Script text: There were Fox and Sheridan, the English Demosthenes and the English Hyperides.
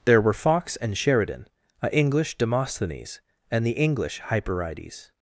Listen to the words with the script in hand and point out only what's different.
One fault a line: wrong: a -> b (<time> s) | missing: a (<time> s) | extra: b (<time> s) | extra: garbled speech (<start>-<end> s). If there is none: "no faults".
wrong: the -> a (1.8 s)